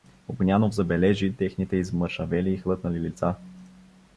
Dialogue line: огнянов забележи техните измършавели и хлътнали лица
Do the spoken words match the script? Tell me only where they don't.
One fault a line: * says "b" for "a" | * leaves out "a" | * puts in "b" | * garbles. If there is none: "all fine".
all fine